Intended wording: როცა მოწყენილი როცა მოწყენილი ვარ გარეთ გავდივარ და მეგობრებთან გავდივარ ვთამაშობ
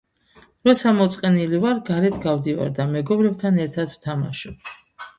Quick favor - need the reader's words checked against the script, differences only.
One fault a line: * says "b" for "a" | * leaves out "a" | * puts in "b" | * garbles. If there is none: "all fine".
* leaves out "როცა მოწყენილი"
* says "ერთად" for "გავდივარ"